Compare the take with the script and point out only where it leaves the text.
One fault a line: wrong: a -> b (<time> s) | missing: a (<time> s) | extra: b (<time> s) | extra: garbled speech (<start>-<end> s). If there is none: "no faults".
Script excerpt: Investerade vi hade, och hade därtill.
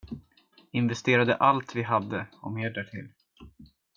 extra: allt (1.4 s)
wrong: hade -> mer (2.5 s)